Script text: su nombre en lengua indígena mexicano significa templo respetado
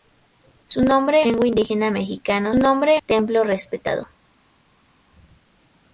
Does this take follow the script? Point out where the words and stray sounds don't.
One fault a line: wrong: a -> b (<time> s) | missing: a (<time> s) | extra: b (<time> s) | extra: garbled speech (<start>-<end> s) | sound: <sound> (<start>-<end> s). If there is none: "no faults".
missing: en (1.2 s)
wrong: significa -> nombre (2.6 s)